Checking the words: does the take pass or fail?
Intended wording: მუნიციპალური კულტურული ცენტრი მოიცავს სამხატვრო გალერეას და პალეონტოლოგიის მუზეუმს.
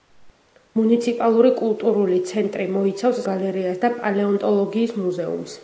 fail